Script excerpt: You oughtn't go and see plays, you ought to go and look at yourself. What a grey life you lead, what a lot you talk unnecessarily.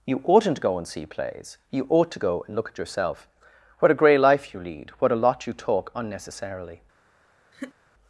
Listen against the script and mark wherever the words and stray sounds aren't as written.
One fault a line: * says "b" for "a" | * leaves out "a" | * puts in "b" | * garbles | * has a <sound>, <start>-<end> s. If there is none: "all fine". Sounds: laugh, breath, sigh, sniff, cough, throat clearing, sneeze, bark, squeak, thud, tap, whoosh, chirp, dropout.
* has a laugh, 7.5-7.7 s